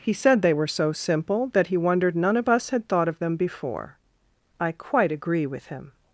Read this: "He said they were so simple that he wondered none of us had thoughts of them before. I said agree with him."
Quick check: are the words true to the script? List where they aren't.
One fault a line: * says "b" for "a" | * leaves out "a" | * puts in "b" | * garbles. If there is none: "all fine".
* says "thought" for "thoughts"
* says "quite" for "said"